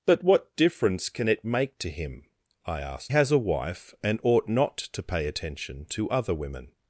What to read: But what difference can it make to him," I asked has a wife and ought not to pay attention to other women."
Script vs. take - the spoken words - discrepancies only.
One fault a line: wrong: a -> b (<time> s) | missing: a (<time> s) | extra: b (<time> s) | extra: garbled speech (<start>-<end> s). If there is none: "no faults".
no faults